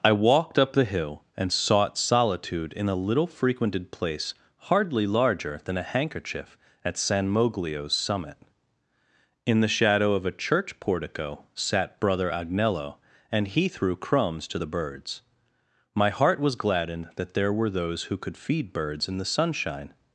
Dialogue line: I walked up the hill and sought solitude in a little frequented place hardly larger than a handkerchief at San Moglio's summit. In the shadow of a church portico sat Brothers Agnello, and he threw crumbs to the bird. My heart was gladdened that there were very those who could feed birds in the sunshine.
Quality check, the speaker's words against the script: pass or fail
fail